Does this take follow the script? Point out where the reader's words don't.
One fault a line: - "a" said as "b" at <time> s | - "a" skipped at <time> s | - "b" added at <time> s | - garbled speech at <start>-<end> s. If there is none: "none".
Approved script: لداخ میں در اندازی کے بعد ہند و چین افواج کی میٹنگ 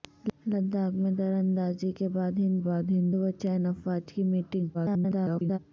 - "بعد ہند" added at 2.7 s
- garbled speech at 4.7-5.6 s